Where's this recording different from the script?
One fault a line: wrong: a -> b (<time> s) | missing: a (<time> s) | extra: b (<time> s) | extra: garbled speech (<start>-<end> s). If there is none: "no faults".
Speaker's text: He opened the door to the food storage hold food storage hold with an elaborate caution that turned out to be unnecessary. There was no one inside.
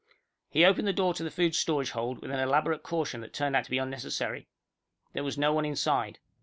missing: food storage hold (2.2 s)